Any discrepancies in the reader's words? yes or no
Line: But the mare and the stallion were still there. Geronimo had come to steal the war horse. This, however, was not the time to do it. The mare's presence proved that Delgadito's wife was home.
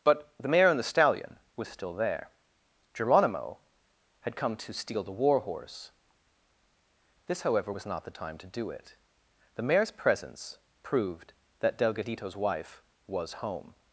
yes